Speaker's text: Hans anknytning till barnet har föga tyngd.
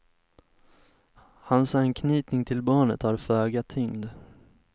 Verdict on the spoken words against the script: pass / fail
pass